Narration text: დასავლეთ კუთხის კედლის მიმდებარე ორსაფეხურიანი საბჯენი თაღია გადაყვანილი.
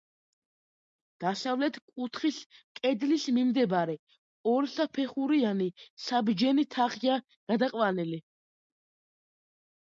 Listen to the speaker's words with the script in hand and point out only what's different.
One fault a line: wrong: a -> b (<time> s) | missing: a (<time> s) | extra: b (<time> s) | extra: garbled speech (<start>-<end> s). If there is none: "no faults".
no faults